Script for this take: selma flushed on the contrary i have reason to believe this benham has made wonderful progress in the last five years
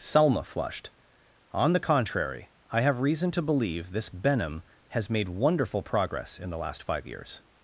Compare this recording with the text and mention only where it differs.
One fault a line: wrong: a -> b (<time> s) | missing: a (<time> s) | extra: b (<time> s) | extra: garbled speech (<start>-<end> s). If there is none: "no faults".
no faults